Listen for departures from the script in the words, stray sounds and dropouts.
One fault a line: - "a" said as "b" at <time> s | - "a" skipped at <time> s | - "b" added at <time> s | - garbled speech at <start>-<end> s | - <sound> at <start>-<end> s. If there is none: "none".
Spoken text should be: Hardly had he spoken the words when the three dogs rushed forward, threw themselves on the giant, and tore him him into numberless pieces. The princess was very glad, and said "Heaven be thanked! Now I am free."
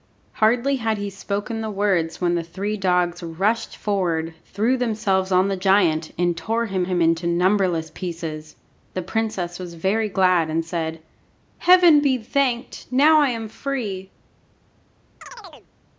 - chirp at 15.2-15.7 s